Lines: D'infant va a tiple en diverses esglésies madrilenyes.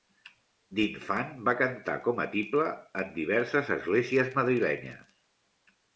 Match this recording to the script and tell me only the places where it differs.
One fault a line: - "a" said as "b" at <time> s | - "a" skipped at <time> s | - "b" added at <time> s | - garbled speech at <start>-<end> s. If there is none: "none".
- "cantar com" added at 1.6 s